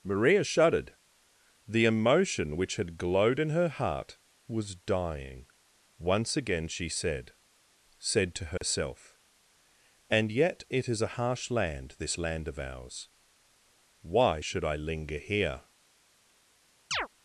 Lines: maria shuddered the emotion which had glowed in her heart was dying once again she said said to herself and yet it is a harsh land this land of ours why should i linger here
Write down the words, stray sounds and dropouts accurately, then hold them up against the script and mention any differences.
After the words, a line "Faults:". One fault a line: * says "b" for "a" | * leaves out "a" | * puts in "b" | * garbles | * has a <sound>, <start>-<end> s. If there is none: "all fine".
maria shuddered the emotion which had glowed in her heart was dying once again she said said to herself and yet it is a harsh land this land of ours why should i linger here
Faults:
* has a dropout, 8.6-8.6 s
* has a chirp, 16.9-17.1 s